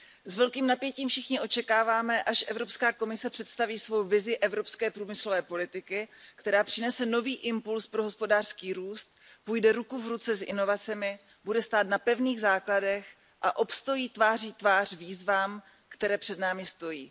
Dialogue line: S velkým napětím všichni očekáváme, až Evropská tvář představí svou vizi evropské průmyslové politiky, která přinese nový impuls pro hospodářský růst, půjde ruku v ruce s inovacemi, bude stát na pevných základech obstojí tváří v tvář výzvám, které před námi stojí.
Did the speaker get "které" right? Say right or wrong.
right